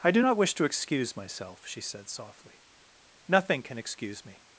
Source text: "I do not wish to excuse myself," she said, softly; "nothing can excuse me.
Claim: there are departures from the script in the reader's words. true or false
false